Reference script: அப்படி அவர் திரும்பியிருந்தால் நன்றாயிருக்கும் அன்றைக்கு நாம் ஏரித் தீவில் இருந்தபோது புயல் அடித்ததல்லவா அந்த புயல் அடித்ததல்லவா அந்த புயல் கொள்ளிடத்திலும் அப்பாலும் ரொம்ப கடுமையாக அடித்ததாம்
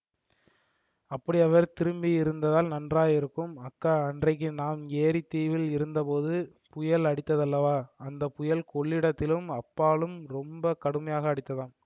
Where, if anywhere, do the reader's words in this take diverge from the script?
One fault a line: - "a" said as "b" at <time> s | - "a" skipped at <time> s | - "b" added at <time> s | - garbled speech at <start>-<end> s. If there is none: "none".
- "அக்கா" added at 3.7 s
- "அடித்ததல்லவா அந்த புயல்" skipped at 8.6 s